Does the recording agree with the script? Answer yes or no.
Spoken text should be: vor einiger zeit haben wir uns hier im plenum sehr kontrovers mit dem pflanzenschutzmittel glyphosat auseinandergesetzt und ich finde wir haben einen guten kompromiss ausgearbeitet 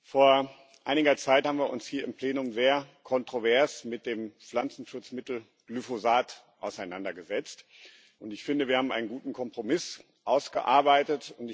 yes